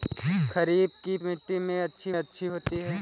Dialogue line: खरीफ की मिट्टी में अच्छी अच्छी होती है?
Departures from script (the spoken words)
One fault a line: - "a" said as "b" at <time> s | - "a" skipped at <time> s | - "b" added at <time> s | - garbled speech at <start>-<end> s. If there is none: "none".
none